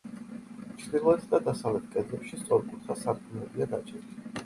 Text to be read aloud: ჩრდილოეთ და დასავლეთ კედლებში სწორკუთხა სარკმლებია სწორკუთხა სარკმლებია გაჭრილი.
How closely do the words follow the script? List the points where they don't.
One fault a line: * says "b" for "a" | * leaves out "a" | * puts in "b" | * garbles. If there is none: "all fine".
* leaves out "სწორკუთხა სარკმლებია"